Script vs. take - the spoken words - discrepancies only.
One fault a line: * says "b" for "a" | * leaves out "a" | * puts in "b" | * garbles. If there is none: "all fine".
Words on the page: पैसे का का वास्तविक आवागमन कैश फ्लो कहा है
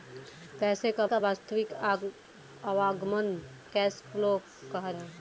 all fine